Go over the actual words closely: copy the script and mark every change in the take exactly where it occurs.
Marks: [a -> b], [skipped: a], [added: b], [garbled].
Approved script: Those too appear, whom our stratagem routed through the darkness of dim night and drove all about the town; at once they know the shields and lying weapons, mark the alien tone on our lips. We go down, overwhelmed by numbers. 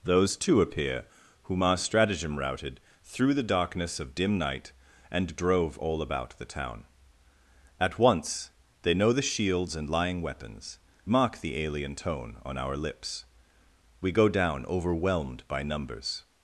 Those too appear, whom our stratagem routed through the darkness of dim night and drove all about the town; at once they know the shields and lying weapons, mark the alien tone on our lips. We go down, overwhelmed by numbers.